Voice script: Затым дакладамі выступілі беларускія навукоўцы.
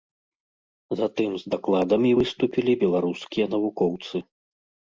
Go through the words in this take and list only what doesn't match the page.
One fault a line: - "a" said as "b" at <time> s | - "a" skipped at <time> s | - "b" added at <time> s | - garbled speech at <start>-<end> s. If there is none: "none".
- "з" added at 1.4 s